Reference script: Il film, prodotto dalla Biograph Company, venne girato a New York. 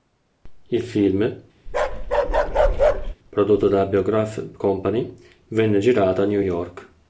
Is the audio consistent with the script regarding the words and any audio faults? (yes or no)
no